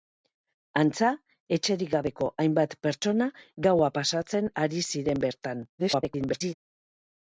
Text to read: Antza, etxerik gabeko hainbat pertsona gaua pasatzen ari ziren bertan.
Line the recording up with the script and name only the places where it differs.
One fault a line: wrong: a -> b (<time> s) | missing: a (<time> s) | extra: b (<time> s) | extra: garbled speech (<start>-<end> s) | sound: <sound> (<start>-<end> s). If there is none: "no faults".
extra: garbled speech (5.8-6.5 s)